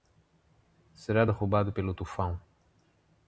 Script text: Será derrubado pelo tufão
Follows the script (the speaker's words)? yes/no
yes